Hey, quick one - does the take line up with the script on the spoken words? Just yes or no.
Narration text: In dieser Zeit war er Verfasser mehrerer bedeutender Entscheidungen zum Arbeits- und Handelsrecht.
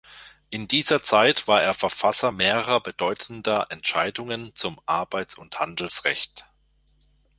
yes